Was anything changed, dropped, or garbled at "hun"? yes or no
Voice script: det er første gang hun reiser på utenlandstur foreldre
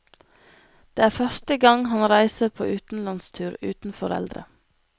yes